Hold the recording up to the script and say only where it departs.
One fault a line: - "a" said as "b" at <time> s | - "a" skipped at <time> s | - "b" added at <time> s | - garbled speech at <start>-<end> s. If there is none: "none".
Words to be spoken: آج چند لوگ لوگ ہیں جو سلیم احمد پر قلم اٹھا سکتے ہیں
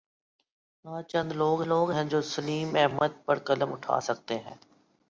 none